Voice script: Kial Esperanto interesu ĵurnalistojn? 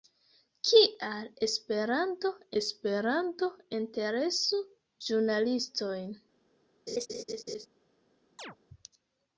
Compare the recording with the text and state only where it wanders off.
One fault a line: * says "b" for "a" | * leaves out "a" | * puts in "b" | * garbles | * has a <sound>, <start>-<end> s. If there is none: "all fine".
* puts in "Esperanto"
* has a laugh, 6.9-7.7 s
* has a chirp, 8.4-8.6 s